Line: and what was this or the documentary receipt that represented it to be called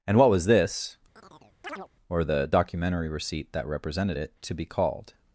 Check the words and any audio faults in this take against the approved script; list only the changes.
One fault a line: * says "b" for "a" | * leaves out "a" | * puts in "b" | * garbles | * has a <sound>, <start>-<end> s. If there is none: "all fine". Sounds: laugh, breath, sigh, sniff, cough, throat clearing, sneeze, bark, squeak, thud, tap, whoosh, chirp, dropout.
* has a chirp, 1.2-1.9 s